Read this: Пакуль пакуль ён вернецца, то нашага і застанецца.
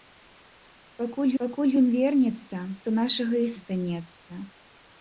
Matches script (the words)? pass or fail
pass